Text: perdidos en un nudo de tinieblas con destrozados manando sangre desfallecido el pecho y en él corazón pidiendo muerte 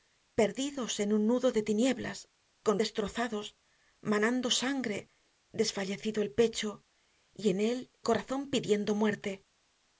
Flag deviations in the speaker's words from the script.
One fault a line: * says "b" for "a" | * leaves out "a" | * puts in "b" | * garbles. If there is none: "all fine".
all fine